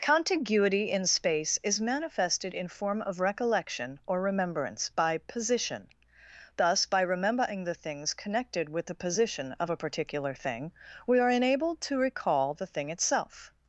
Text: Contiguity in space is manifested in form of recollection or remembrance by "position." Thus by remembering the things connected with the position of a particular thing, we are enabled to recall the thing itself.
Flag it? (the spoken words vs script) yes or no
no